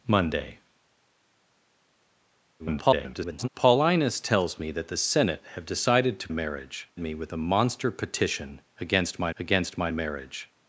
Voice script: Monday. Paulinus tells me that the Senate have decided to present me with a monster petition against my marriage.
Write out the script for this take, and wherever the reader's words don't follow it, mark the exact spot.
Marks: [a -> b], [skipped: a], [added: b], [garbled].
Monday. [garbled] Paulinus tells me that the Senate have decided to [present -> marriage] me with a monster petition against my [added: against my] marriage.